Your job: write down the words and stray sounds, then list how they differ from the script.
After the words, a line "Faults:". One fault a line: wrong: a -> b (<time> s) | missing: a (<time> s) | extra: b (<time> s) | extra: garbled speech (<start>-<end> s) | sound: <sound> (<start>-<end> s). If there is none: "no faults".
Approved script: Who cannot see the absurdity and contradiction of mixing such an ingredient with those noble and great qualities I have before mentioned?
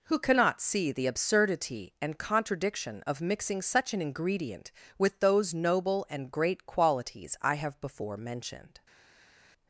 Who cannot see the absurdity and contradiction of mixing such an ingredient with those noble and great qualities I have before mentioned?
Faults:
no faults